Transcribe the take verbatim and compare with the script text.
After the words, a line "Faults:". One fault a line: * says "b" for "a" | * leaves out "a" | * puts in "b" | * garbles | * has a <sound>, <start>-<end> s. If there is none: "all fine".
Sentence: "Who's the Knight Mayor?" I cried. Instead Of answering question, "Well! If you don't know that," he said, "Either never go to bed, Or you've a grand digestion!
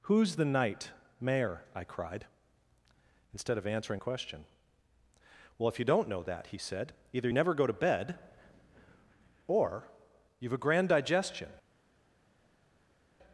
"Who's the Knight Mayor?" I cried. Instead Of answering question, "Well! If you don't know that," he said, "Either never go to bed, Or you've a grand digestion!
Faults:
all fine